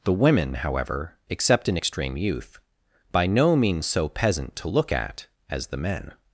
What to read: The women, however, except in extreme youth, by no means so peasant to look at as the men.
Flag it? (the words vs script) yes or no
no